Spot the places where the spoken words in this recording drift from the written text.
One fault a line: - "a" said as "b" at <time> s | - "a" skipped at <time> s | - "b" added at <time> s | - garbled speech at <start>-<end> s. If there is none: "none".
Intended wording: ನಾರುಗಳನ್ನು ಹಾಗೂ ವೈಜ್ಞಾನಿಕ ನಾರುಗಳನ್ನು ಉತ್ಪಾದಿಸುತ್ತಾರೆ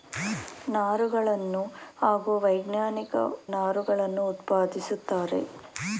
none